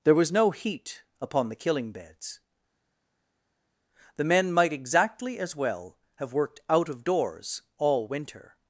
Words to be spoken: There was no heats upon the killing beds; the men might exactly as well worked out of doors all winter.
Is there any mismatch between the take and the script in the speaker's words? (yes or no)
yes